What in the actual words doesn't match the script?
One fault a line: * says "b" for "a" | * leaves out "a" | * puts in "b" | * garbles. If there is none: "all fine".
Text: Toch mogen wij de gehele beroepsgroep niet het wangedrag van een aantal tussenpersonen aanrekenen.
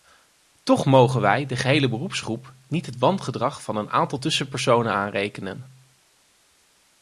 all fine